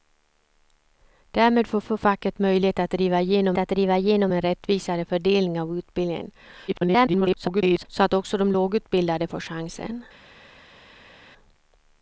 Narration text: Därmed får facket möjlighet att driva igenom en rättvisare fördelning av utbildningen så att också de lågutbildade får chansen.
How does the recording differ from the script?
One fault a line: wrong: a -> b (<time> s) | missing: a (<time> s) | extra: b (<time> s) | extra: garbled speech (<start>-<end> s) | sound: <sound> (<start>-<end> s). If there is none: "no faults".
extra: får (1.8 s)
extra: att driva igenom (3.6 s)
extra: garbled speech (6.7-7.9 s)